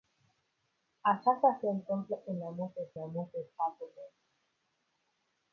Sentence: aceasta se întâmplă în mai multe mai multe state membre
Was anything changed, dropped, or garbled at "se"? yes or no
no